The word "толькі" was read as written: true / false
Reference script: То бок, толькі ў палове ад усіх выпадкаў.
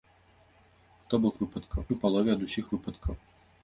false